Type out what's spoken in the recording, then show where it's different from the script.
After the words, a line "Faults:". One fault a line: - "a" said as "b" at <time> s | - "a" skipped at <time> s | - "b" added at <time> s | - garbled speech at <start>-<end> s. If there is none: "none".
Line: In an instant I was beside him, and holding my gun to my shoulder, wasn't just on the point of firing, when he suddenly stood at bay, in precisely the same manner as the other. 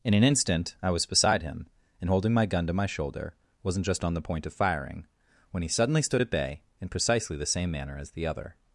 In an instant I was beside him, and holding my gun to my shoulder, wasn't just on the point of firing, when he suddenly stood at bay, in precisely the same manner as the other.
Faults:
none